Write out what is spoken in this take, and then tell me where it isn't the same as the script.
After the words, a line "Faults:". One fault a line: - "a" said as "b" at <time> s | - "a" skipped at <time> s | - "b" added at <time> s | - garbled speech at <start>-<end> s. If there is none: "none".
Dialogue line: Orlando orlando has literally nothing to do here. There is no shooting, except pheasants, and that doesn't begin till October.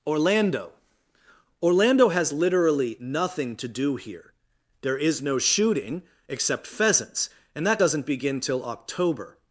Orlando orlando has literally nothing to do here. There is no shooting, except pheasants, and that doesn't begin till October.
Faults:
none